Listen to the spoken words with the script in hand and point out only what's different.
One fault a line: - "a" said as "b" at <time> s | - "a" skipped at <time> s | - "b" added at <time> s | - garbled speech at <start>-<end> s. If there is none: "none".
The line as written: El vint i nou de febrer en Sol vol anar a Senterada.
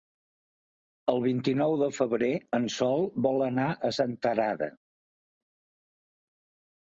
none